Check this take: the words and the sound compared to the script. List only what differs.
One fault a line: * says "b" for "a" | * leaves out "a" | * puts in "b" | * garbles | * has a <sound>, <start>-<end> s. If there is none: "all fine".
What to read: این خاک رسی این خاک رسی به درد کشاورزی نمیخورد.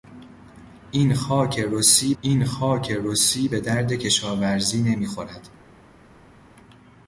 all fine